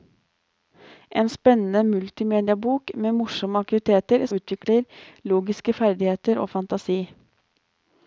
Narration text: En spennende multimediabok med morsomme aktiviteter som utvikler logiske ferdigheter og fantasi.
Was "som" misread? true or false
true